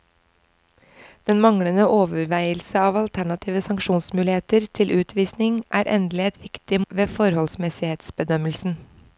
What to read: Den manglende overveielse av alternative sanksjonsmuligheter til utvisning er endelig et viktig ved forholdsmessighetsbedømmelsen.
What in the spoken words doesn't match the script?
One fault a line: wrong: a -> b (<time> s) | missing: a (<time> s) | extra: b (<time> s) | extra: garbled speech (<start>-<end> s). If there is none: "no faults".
no faults